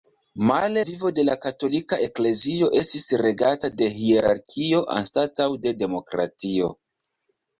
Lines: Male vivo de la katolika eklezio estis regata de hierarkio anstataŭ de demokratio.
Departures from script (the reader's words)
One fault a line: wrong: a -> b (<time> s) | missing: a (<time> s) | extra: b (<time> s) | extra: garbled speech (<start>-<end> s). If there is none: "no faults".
no faults